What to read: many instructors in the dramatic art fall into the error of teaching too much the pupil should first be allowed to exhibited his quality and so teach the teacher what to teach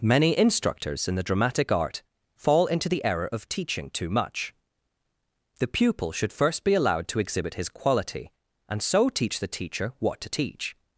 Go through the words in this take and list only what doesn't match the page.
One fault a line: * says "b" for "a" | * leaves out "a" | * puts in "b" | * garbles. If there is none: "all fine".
* says "exhibit" for "exhibited"